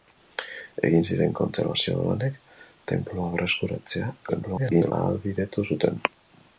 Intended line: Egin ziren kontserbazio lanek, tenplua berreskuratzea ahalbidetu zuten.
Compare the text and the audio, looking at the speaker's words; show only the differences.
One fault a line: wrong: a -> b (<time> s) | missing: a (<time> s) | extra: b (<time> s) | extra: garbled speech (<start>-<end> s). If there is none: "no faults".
extra: garbled speech (4.3-4.9 s)